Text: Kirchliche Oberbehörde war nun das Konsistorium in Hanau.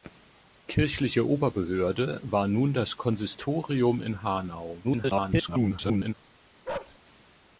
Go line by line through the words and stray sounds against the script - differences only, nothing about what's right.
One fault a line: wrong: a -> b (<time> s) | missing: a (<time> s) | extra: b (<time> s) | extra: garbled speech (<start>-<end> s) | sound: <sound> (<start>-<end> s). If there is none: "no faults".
extra: garbled speech (4.8-6.1 s)
sound: bark (6.6-7.0 s)